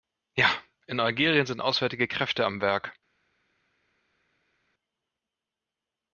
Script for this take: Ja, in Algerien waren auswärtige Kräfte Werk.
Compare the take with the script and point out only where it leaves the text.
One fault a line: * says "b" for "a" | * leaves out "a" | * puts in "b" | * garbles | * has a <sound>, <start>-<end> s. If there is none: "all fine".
* says "sind" for "waren"
* puts in "am"